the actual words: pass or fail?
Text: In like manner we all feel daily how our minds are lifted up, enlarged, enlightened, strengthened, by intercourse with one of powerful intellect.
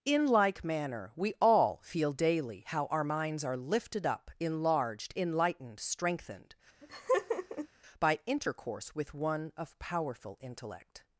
pass